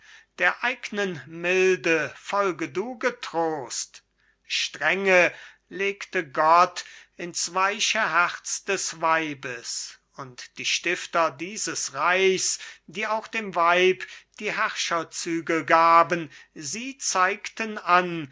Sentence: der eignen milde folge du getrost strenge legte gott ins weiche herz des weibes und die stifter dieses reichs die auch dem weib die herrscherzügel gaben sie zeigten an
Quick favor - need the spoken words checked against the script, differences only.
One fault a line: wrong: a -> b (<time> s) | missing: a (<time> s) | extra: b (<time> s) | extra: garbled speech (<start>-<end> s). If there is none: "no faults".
no faults